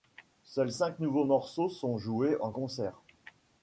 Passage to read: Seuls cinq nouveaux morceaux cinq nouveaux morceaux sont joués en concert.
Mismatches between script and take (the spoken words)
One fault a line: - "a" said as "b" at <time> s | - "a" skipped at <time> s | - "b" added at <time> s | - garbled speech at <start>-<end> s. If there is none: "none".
- "cinq nouveaux morceaux" skipped at 1.7 s